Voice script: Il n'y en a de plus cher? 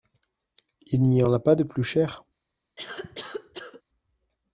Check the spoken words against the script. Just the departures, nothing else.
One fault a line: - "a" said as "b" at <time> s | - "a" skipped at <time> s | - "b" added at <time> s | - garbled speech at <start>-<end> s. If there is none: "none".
- "pas" added at 1.4 s